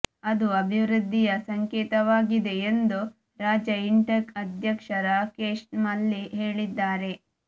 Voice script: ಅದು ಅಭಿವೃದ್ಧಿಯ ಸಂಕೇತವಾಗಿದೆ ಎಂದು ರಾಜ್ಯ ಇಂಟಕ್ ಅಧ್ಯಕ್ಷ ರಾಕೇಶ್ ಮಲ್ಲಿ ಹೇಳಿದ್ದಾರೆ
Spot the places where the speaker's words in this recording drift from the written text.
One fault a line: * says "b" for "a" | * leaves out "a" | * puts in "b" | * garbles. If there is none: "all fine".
all fine